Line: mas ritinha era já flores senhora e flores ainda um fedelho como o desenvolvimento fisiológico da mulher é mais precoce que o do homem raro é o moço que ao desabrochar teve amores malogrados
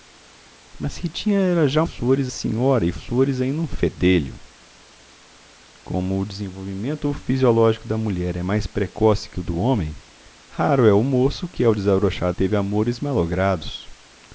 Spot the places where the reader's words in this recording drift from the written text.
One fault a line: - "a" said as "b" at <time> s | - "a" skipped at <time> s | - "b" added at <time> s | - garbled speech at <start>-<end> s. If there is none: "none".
none